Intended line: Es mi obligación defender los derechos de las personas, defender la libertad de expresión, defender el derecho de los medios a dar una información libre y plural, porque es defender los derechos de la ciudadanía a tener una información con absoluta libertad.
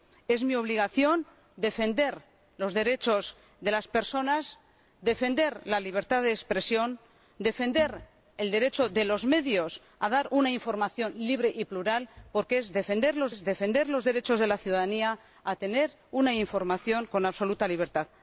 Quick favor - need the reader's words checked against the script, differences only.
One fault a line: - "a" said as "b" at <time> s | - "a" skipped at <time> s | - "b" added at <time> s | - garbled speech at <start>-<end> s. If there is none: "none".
- "es defender los" added at 13.3 s